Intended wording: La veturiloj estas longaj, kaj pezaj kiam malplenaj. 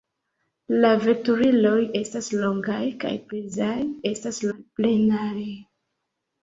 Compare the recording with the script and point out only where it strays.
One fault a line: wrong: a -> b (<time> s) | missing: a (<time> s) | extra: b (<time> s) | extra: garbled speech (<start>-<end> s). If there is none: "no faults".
wrong: kiam -> estas (4.1 s)